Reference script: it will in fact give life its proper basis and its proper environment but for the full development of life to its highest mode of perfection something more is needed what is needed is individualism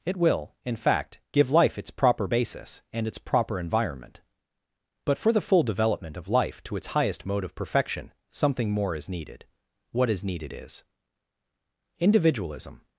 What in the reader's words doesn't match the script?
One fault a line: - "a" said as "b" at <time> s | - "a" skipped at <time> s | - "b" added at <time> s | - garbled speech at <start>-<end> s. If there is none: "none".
none